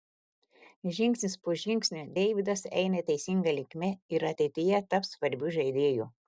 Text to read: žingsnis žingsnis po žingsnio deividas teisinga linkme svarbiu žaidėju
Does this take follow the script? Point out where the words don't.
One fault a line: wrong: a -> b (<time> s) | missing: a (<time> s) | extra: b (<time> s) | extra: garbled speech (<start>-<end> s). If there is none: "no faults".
missing: žingsnis (1.4 s)
extra: eina (2.8 s)
extra: ir ateityje taps (4.2 s)